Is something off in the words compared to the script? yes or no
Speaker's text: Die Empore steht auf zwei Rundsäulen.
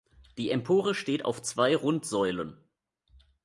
no